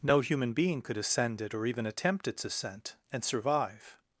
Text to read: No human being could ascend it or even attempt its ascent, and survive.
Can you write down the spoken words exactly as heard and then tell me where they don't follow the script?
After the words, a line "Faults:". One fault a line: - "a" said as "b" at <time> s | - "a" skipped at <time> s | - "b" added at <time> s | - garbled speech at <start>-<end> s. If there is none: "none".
No human being could ascend it or even attempt its ascent, and survive.
Faults:
none